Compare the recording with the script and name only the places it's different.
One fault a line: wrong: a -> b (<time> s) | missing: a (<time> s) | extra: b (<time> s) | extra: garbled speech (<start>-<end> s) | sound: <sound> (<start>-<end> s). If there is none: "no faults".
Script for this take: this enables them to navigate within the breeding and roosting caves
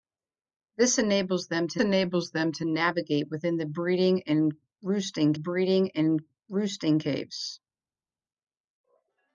extra: enables them to (1.8 s)
extra: breeding and roosting (5.3 s)